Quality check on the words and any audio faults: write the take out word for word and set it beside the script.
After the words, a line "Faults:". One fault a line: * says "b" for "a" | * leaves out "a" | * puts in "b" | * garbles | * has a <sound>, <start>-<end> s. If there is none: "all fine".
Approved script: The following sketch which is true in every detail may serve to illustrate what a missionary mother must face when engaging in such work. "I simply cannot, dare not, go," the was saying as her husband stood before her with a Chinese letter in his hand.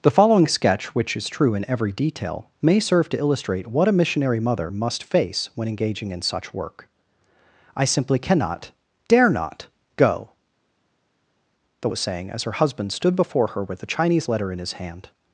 The following sketch which is true in every detail may serve to illustrate what a missionary mother must face when engaging in such work. "I simply cannot, dare not, go," the was saying as her husband stood before her with a Chinese letter in his hand.
Faults:
all fine